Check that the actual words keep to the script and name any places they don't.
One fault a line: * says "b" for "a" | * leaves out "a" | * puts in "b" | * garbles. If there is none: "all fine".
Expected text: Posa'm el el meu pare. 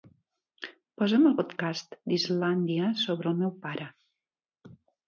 * puts in "podcast d'Islàndia sobre"